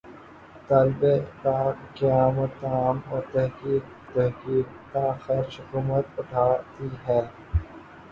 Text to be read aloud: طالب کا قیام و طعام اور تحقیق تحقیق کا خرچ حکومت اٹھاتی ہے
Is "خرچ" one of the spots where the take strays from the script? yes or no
no